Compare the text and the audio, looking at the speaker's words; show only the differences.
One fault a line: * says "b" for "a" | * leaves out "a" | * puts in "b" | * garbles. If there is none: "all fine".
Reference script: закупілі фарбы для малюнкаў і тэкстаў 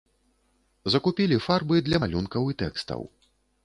all fine